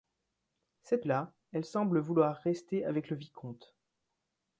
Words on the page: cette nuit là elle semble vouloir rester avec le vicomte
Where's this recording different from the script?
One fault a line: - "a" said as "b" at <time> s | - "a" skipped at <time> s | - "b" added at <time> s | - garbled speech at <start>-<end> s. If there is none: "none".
- "nuit" skipped at 1.1 s